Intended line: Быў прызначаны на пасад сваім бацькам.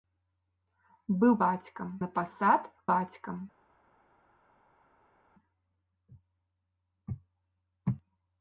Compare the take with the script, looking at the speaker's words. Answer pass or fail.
fail